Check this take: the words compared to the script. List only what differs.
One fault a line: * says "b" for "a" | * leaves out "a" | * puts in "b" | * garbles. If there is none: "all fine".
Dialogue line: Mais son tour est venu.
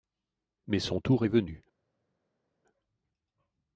all fine